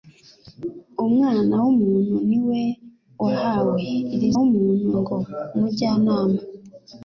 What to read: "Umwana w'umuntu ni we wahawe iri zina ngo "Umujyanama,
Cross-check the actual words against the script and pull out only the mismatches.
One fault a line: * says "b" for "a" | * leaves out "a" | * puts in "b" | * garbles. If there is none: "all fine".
* says "w'umuntu" for "zina"